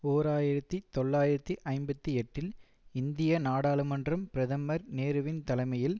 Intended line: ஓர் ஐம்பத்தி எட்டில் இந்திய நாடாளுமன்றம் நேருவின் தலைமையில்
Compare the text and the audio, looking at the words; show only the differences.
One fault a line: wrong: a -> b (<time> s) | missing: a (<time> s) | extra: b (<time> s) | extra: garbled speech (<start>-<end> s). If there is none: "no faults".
extra: ஆயிரத்தி தொள்ளாயிரத்தி (0.3 s)
extra: பிரதமர் (4.3 s)